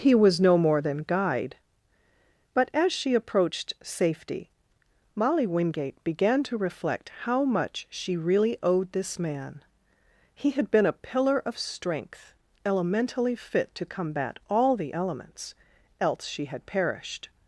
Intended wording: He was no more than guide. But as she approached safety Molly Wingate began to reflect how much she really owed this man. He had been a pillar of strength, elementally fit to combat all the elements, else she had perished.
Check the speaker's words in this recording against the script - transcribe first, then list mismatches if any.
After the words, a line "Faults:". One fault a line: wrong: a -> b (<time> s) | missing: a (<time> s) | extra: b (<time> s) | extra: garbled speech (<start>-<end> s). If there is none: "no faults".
He was no more than guide. But as she approached safety Molly Wingate began to reflect how much she really owed this man. He had been a pillar of strength, elementally fit to combat all the elements, else she had perished.
Faults:
no faults